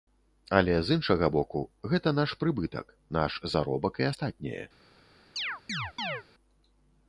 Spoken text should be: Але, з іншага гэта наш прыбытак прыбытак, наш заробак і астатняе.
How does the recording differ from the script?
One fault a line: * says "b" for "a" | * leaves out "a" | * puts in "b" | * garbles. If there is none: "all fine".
* puts in "боку"
* leaves out "прыбытак"